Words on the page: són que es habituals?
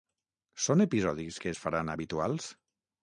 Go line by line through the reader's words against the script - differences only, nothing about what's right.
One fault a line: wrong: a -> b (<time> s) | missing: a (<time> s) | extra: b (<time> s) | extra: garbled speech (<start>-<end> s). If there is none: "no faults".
extra: episodis (0.8 s)
extra: faran (1.6 s)